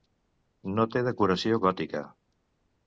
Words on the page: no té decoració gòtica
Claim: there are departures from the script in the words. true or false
false